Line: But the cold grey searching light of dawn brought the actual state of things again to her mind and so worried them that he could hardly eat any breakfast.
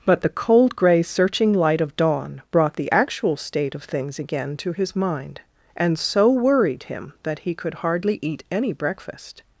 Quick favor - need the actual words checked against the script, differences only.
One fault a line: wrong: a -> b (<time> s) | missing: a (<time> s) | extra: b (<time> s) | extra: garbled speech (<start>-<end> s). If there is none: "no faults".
wrong: her -> his (4.7 s)
wrong: them -> him (6.8 s)